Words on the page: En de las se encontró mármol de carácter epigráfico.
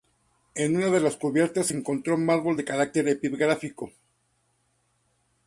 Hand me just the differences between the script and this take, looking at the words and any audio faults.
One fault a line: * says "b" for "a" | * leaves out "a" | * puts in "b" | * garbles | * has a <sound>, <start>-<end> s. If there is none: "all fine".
* puts in "una"
* puts in "cubiertas"